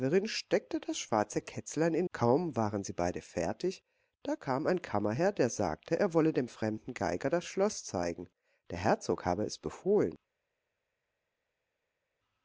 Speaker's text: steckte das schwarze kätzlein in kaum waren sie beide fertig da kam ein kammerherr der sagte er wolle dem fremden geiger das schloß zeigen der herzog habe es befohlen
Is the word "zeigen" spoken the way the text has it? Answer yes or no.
yes